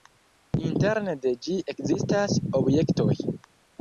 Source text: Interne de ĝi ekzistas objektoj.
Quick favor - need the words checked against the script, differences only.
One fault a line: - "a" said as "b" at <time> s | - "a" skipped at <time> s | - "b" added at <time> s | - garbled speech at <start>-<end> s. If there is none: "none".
none